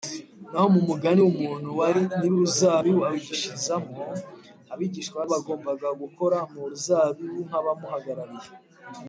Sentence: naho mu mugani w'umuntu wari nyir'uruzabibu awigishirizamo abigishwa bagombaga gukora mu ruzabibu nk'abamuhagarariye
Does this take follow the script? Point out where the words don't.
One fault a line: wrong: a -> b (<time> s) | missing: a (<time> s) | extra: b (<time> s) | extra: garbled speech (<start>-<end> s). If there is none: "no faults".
no faults